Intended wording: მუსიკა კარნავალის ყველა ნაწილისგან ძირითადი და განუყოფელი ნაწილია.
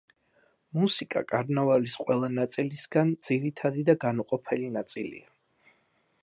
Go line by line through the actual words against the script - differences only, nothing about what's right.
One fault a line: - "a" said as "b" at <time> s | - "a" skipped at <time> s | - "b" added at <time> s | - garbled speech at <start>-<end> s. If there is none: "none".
none